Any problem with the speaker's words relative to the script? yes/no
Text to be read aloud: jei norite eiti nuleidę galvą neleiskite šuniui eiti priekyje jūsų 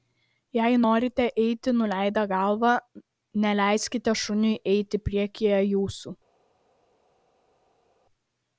no